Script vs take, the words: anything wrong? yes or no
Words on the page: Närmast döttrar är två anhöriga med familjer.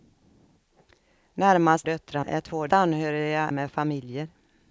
no